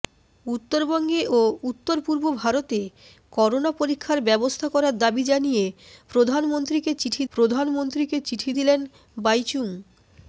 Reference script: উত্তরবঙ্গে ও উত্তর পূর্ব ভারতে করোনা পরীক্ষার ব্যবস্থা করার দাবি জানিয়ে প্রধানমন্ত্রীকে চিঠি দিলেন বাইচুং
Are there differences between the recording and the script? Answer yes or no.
yes